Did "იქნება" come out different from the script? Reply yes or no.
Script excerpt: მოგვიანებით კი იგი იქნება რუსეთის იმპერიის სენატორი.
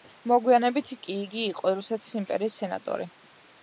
yes